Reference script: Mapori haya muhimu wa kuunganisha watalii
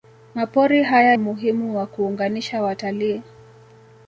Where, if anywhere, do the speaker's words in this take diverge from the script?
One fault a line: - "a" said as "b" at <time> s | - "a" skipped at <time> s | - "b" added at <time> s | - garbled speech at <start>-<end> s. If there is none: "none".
none